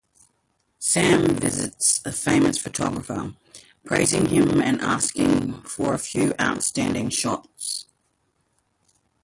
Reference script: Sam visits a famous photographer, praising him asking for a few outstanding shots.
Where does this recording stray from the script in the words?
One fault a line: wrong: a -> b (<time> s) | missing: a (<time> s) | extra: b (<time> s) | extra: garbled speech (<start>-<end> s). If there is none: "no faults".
extra: and (4.6 s)